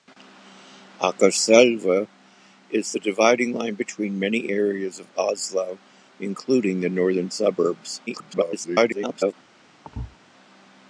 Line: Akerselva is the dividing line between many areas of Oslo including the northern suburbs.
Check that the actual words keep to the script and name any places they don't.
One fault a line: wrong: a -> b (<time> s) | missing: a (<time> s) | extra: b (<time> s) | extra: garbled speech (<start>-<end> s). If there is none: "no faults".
extra: garbled speech (8.1-9.3 s)